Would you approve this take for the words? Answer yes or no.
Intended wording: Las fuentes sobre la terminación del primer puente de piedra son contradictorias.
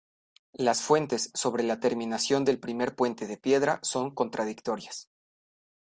yes